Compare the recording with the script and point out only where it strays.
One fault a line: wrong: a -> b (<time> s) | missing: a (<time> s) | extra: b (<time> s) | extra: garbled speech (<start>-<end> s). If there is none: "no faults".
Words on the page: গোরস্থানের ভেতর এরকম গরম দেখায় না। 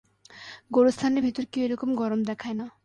extra: কেউ (1.5 s)